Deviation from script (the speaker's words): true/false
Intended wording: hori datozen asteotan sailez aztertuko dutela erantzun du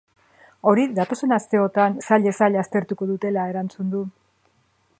true